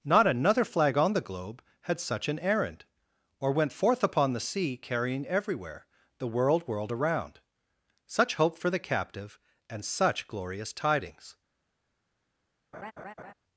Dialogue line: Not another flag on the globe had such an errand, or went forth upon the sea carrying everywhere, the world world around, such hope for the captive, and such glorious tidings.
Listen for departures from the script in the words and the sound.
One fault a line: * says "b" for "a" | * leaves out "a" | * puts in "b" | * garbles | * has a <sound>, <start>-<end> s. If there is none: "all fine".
* has a laugh, 12.7-13.3 s